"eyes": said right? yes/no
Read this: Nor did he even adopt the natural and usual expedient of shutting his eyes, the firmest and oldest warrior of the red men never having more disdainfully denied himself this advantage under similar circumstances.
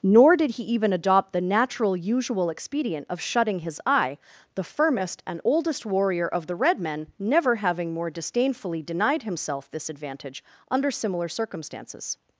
no